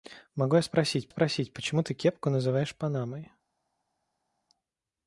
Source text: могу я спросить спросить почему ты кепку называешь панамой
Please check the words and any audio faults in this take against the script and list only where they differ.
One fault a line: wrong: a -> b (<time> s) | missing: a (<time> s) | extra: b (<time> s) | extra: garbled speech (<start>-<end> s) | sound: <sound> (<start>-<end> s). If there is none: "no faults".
no faults